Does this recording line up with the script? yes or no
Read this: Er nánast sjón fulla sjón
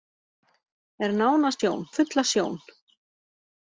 yes